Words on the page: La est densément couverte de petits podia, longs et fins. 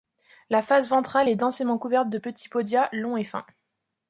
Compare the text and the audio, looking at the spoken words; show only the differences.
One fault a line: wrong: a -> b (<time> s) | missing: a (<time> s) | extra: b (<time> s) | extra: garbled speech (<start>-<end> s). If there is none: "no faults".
extra: face ventrale (0.6 s)